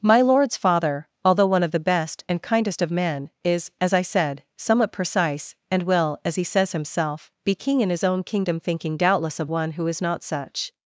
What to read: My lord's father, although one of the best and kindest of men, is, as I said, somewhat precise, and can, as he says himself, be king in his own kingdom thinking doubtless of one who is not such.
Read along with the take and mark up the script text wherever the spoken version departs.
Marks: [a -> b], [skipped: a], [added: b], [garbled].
My lord's father, although one of the best and kindest of men, is, as I said, somewhat precise, and [can, -> will] as he says himself, be king in his own kingdom thinking doubtless of one who is not such.